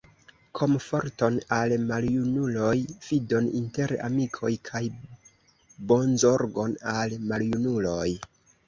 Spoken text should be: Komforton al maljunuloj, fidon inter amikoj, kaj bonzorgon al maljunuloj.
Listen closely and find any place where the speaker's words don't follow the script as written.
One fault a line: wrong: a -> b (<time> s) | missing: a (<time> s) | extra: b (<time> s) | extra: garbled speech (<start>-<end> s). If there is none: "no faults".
no faults